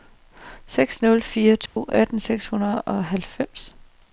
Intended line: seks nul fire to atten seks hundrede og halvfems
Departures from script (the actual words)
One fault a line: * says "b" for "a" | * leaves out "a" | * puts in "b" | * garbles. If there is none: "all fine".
all fine